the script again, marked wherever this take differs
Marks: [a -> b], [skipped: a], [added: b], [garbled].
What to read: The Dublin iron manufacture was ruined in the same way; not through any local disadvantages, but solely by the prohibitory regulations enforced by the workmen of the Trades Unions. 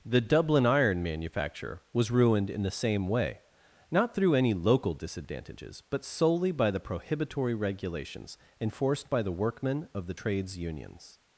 The Dublin iron manufacture was ruined in the same way; not through any local disadvantages, but solely by the prohibitory regulations enforced by the workmen of the Trades Unions.